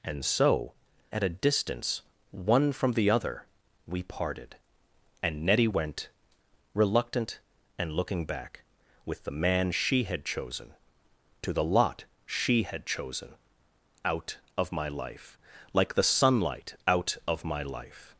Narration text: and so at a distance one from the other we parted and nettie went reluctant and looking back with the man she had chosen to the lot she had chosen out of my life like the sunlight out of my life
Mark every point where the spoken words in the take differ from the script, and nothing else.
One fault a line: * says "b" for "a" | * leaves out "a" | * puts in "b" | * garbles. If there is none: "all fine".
all fine